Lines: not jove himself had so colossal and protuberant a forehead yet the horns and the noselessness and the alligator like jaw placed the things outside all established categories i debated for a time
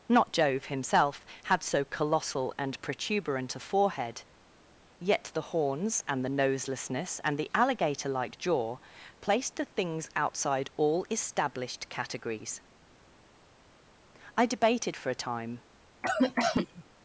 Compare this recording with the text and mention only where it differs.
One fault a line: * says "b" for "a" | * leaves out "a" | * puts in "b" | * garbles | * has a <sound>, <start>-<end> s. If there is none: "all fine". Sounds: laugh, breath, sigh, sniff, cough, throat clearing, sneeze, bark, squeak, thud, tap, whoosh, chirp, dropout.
* has a cough, 16.0-16.8 s